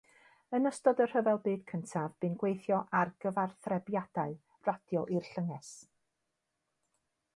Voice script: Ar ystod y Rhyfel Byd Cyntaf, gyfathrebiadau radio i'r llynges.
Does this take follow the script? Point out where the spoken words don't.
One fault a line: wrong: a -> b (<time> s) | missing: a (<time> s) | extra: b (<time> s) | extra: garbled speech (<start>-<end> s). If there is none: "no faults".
wrong: Ar -> Yn (0.6 s)
extra: bu'n gweithio ar (2.2 s)